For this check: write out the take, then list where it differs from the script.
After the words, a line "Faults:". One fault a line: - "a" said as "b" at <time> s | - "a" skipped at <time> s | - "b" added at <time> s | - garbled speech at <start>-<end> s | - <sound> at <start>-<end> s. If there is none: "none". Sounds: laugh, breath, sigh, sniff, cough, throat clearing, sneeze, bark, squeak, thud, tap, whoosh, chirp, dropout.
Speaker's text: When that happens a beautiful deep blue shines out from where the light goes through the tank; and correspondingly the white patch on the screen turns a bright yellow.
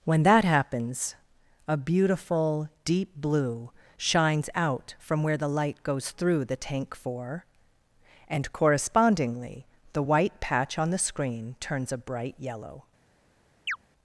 When that happens a beautiful deep blue shines out from where the light goes through the tank; four and correspondingly the white patch on the screen turns a bright yellow.
Faults:
- "four" added at 7.0 s
- chirp at 13.7-13.8 s